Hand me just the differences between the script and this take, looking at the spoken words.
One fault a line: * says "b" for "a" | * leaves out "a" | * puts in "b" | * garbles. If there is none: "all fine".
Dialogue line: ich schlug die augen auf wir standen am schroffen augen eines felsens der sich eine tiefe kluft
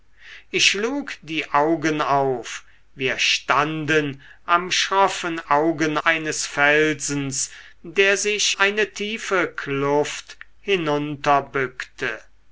all fine